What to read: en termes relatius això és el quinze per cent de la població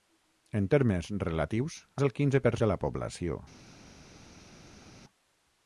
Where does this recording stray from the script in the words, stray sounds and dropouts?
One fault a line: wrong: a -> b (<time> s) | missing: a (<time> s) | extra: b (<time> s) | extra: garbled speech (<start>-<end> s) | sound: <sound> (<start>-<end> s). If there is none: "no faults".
missing: això (1.8 s)
missing: cent (2.5 s)